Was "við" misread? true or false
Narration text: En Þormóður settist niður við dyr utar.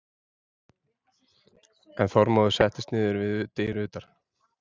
false